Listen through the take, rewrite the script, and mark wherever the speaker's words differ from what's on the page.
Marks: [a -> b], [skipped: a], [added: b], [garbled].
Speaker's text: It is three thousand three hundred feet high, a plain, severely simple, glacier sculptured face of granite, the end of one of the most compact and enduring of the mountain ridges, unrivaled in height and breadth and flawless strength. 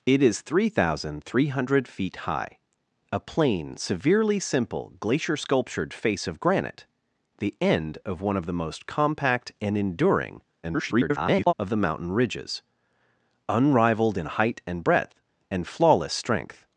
It is three thousand three hundred feet high, a plain, severely simple, glacier sculptured face of granite, the end of one of the most compact and enduring [garbled] of the mountain ridges, unrivaled in height and breadth and flawless strength.